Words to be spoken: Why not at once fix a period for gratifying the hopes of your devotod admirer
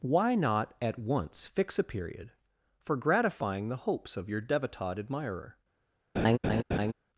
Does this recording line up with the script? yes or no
yes